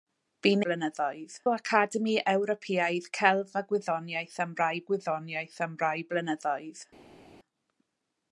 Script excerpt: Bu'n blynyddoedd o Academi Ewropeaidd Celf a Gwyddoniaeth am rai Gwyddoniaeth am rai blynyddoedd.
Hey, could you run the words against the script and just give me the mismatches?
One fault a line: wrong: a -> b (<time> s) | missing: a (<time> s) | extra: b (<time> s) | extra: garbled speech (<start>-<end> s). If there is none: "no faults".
no faults